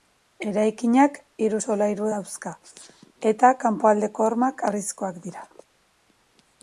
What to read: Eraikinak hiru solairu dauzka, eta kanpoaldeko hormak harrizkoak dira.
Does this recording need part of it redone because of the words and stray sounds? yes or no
no